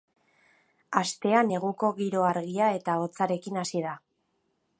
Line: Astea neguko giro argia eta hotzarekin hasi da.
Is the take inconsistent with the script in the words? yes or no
no